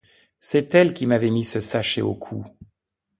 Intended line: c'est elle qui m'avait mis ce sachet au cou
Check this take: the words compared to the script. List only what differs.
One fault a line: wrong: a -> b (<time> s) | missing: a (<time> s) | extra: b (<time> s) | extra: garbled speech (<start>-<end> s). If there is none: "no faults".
no faults